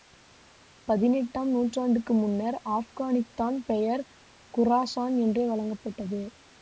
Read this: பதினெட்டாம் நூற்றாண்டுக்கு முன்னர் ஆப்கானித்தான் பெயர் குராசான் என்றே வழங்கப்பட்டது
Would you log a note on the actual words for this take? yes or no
no